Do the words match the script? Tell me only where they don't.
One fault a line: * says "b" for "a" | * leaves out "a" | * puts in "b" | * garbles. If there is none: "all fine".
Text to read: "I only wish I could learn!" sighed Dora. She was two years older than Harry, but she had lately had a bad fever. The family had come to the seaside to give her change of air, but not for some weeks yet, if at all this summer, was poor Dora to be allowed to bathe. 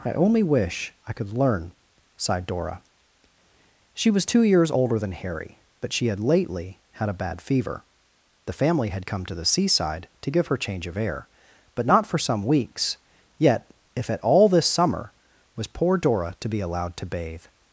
all fine